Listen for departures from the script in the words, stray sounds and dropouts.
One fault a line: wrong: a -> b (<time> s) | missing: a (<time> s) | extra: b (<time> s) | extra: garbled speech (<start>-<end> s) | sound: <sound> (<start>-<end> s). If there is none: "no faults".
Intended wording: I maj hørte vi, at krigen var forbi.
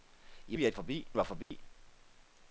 missing: maj hørte (0.6 s)
wrong: krigen -> forbi (0.7 s)
sound: dropout (1.4-1.5 s)